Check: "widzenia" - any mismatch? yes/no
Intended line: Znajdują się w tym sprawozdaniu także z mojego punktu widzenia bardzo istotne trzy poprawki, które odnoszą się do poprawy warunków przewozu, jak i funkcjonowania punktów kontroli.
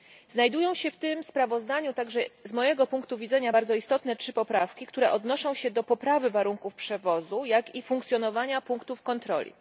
no